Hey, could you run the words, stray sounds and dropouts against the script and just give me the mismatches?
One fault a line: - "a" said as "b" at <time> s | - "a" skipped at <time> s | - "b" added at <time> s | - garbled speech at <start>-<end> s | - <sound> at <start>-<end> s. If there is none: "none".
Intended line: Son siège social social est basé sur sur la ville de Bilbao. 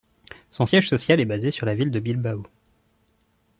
- "social" skipped at 1.2 s
- "sur" skipped at 1.7 s